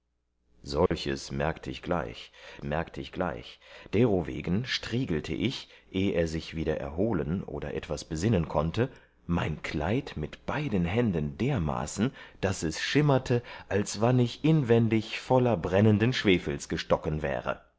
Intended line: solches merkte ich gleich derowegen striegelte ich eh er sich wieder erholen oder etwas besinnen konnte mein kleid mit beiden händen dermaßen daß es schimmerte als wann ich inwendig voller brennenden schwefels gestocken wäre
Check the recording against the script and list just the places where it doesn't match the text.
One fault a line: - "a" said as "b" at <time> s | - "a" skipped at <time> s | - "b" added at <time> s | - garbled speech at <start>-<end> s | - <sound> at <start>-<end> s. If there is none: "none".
- dropout at 0.9-0.9 s
- "merkte ich gleich" added at 2.6 s